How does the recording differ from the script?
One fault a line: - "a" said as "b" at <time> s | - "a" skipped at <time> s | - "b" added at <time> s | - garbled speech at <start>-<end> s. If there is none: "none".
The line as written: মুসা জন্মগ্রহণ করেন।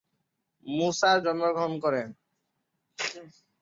none